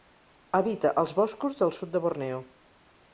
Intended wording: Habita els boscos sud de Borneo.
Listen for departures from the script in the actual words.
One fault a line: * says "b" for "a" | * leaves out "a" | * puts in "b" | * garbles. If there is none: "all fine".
* puts in "del"